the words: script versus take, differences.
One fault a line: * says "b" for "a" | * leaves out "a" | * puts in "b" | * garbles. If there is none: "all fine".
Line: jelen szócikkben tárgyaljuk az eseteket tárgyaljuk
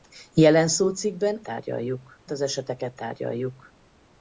all fine